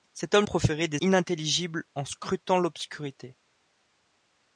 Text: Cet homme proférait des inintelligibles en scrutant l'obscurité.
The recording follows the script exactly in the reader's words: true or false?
true